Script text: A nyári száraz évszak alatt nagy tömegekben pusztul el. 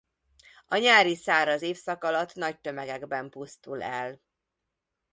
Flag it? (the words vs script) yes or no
no